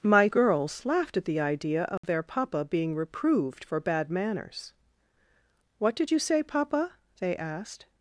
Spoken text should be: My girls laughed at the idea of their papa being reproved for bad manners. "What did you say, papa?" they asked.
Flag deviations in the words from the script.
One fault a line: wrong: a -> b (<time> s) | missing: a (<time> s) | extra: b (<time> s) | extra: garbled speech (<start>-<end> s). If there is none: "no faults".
no faults